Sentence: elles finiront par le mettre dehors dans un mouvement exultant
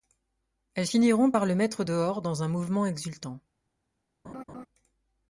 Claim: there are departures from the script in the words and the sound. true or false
true